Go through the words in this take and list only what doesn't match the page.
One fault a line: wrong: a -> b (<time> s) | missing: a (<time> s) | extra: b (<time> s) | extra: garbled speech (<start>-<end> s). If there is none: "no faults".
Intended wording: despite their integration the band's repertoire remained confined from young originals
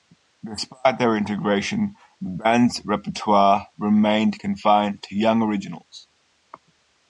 wrong: from -> to (5.0 s)